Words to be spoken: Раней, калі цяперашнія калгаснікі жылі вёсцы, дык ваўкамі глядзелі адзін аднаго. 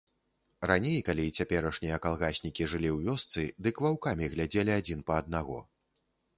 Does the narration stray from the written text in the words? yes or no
yes